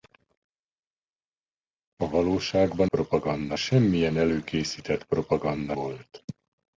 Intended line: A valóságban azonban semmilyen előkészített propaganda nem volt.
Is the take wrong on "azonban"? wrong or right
wrong